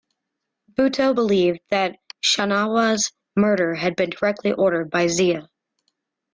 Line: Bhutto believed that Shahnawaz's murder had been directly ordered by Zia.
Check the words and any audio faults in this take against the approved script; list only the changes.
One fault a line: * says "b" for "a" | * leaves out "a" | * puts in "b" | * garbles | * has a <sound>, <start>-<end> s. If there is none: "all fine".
all fine